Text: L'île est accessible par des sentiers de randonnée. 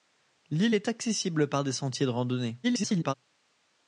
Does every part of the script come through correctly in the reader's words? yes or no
no